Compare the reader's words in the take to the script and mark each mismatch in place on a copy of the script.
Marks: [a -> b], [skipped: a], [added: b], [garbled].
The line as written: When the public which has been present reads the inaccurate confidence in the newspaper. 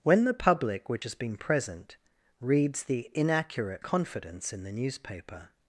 When the public which has been present reads the inaccurate confidence in the newspaper.